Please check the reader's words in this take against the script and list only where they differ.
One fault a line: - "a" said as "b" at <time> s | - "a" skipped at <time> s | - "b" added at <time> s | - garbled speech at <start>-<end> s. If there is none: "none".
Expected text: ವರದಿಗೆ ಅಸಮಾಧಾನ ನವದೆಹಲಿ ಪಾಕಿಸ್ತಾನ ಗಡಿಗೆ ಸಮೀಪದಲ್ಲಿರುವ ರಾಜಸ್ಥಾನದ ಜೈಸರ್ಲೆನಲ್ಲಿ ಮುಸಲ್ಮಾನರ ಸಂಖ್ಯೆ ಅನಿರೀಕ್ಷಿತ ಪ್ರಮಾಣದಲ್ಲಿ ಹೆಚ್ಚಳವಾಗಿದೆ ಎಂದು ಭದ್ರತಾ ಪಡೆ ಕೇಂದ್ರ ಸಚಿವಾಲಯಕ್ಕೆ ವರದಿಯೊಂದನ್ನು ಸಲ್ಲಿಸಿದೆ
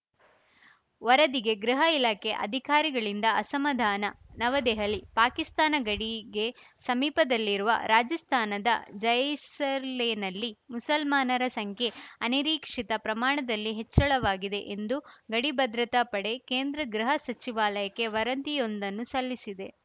- "ಗೃಹ ಇಲಾಖೆ ಅಧಿಕಾರಿಗಳಿಂದ" added at 1.6 s
- "ಗಡಿ" added at 15.3 s
- "ಗೃಹ" added at 16.9 s